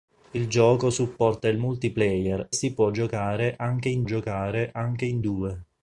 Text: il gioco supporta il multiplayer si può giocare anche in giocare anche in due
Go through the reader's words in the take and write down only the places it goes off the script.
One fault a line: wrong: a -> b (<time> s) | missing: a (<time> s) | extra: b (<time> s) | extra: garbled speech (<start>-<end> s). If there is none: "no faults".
no faults